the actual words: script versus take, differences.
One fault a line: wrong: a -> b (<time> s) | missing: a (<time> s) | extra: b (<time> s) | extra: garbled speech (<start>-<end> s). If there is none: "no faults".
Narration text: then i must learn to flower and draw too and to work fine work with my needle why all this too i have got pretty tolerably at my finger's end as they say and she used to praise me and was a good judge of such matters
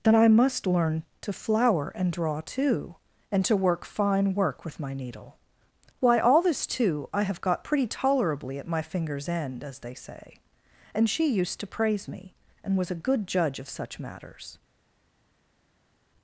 no faults